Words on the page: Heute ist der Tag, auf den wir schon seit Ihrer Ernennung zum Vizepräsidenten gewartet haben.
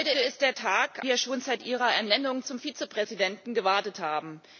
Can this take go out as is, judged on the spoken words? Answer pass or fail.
fail